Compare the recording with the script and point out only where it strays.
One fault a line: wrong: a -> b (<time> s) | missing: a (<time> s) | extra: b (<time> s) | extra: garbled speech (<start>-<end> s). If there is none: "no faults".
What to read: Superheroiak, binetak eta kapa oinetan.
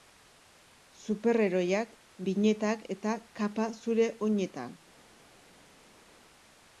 extra: zure (3.8 s)